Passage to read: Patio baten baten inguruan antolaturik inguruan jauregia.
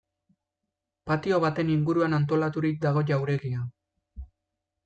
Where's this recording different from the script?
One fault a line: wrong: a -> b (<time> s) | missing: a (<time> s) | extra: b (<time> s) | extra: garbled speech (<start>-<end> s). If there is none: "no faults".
missing: baten (1.7 s)
wrong: inguruan -> dago (2.9 s)